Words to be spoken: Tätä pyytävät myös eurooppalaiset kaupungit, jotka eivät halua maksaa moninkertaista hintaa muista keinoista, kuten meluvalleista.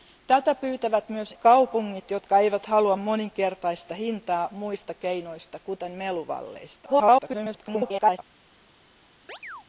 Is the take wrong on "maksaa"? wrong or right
wrong